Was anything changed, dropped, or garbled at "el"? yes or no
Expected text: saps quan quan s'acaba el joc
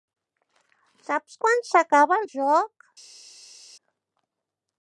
no